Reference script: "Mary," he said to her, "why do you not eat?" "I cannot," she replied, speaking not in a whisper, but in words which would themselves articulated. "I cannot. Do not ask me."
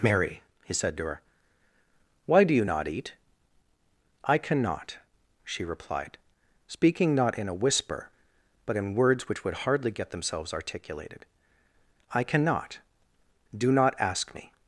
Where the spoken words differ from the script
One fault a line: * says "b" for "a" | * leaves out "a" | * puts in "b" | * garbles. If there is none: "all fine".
* puts in "hardly get"